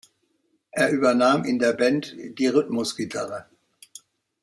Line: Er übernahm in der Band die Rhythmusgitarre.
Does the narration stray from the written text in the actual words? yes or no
no